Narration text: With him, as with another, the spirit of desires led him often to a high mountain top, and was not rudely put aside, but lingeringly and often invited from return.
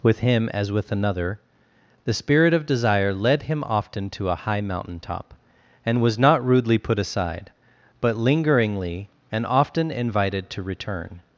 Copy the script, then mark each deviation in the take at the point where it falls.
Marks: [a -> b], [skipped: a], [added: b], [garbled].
With him, as with another, the spirit of [desires -> desire] led him often to a high mountain top, and was not rudely put aside, but lingeringly and often invited [from -> to] return.